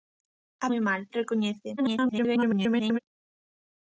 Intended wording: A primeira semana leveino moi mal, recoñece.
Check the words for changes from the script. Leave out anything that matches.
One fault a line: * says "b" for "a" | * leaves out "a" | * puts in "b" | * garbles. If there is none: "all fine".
* leaves out "primeira semana leveino"
* garbles